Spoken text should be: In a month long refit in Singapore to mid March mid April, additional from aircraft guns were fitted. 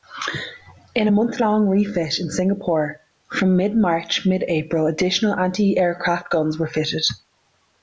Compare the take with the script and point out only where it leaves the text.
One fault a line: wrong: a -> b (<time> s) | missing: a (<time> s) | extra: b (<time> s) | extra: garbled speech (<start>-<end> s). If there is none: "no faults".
wrong: to -> from (3.3 s)
wrong: from -> anti (5.3 s)